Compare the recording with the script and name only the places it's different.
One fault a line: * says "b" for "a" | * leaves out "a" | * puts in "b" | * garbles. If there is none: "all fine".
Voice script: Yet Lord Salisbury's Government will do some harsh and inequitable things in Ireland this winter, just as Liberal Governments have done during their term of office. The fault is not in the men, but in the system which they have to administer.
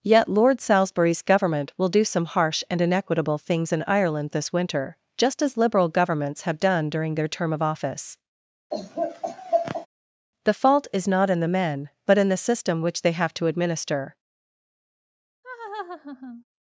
all fine